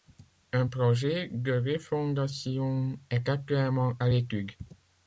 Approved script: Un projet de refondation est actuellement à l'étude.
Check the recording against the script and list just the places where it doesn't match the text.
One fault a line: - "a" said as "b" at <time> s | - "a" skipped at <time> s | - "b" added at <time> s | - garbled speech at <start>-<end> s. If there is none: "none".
none